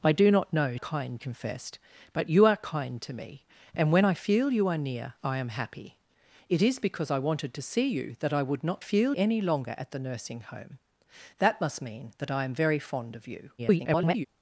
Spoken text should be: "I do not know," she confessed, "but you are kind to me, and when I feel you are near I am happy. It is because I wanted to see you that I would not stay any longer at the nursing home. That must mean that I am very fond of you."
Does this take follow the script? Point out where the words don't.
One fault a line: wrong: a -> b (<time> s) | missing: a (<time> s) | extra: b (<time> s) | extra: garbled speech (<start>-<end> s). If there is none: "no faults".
wrong: she -> kind (0.8 s)
wrong: stay -> feel (8.8 s)
extra: garbled speech (13.6-14.3 s)